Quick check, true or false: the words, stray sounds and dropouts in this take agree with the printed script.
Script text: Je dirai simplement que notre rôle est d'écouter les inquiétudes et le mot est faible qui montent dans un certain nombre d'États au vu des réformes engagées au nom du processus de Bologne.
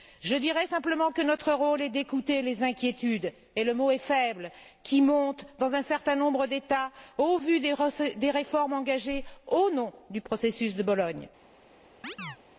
false